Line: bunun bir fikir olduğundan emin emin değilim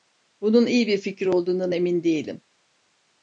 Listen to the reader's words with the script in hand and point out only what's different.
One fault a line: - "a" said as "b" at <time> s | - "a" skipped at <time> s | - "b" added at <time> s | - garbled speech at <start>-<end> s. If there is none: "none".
- "iyi" added at 0.7 s
- "emin" skipped at 2.0 s